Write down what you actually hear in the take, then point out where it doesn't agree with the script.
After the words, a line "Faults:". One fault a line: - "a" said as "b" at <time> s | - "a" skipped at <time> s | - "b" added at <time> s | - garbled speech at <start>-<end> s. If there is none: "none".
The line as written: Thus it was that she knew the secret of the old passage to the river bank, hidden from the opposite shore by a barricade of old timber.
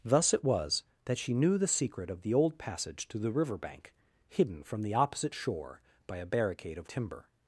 Thus it was that she knew the secret of the old passage to the river bank, hidden from the opposite shore by a barricade of timber.
Faults:
- "old" skipped at 6.9 s